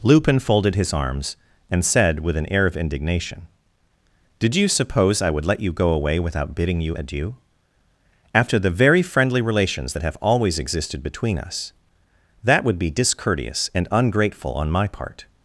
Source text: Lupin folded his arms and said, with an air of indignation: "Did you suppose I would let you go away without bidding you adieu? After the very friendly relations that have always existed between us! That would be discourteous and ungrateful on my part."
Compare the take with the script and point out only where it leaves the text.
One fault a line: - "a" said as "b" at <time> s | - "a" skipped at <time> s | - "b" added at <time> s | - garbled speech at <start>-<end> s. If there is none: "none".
none